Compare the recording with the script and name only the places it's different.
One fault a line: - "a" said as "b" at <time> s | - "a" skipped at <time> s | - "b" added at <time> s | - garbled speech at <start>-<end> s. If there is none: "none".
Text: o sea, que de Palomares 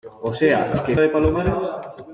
none